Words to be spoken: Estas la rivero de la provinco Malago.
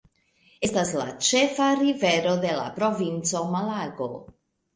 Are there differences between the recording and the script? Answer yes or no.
yes